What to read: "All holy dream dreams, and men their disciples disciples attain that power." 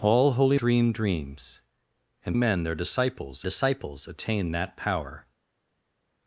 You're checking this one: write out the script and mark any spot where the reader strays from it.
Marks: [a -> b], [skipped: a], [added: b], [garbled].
"All holy dream dreams, and men their disciples disciples attain that power."